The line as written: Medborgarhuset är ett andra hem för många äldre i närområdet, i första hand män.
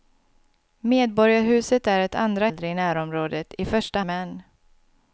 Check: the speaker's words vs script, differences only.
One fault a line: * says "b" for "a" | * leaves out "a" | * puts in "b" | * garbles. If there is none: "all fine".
* leaves out "hem för många"
* leaves out "hand"